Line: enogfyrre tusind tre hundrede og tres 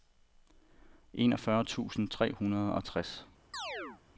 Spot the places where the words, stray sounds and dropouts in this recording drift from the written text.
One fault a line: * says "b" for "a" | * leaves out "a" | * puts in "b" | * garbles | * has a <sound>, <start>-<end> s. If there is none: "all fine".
* has a chirp, 3.5-4.0 s